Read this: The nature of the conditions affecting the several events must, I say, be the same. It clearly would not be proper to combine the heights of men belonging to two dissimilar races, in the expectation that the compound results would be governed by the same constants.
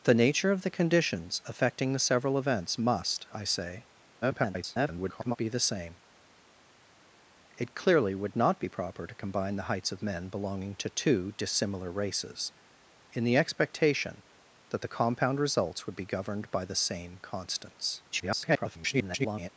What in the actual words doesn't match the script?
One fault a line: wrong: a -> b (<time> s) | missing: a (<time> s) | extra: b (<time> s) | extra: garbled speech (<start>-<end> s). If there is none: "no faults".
extra: garbled speech (4.2-5.4 s)
extra: garbled speech (18.1-19.5 s)